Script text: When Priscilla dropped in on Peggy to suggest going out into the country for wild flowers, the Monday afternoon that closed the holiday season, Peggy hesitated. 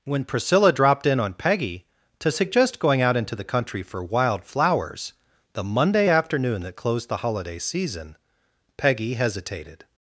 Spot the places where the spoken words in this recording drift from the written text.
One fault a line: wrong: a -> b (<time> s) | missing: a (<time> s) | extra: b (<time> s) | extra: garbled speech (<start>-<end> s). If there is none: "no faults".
no faults